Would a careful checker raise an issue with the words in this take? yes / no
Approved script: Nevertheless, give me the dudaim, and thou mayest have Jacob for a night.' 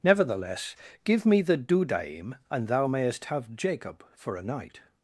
no